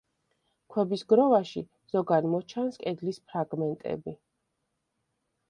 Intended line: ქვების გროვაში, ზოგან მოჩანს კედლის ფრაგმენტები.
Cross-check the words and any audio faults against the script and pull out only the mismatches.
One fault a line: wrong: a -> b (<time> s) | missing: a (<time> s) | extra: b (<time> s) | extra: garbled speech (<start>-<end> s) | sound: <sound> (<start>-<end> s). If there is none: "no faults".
no faults